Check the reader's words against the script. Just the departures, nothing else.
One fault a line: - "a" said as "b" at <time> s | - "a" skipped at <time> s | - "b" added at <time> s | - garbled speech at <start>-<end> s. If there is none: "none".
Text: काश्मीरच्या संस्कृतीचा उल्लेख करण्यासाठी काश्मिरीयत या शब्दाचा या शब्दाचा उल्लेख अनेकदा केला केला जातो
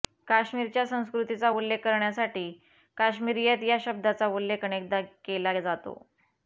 - "या शब्दाचा" skipped at 4.3 s
- "केला" skipped at 5.6 s